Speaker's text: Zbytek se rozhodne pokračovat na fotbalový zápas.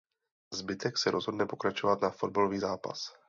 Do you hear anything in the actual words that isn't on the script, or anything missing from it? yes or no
no